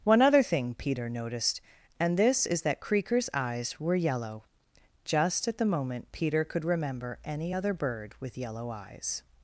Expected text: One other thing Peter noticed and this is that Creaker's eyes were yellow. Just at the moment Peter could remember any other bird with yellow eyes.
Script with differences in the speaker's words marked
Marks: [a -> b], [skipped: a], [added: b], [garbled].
One other thing Peter noticed and this is that Creaker's eyes were yellow. Just at the moment Peter could remember any other bird with yellow eyes.